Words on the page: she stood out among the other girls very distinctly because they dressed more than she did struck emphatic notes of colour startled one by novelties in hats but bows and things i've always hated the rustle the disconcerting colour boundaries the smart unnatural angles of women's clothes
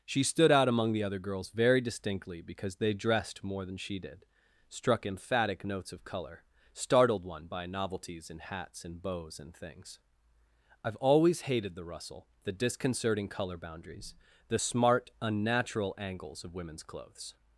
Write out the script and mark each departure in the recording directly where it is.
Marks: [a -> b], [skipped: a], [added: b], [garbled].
she stood out among the other girls very distinctly because they dressed more than she did struck emphatic notes of colour startled one by novelties in hats [but -> and] bows and things i've always hated the rustle the disconcerting colour boundaries the smart unnatural angles of women's clothes